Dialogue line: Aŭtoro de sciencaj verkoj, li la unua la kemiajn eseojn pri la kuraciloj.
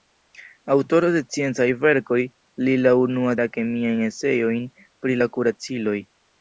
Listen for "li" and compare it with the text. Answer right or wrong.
right